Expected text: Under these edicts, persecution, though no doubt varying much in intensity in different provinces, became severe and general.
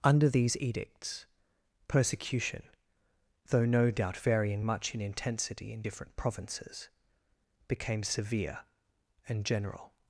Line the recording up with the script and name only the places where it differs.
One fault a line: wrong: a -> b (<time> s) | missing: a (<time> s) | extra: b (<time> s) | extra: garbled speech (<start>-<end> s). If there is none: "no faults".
no faults